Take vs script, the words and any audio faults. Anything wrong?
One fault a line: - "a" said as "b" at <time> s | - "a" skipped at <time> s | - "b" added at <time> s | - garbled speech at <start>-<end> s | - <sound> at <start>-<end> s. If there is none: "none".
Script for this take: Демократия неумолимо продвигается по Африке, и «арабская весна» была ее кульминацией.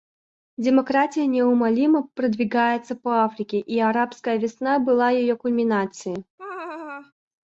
- laugh at 6.4-7.1 s